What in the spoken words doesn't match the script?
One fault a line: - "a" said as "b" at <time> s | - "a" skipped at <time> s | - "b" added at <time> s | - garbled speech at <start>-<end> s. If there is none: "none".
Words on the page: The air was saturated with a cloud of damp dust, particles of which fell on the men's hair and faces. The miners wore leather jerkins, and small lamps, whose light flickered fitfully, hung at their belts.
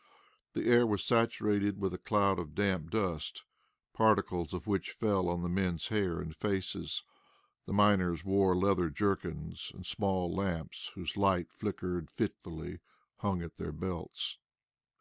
none